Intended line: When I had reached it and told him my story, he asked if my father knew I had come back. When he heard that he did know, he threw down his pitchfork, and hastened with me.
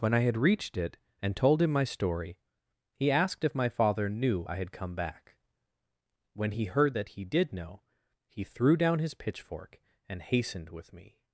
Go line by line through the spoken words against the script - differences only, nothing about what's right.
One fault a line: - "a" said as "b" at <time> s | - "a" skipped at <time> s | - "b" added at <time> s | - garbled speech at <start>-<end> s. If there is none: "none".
none